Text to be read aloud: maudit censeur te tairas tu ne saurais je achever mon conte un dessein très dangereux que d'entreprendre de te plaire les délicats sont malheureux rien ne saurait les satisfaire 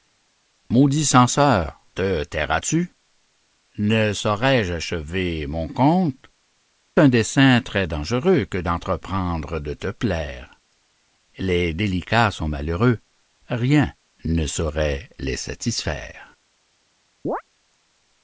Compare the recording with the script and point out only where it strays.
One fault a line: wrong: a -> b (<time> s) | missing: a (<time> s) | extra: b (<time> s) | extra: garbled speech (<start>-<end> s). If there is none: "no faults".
no faults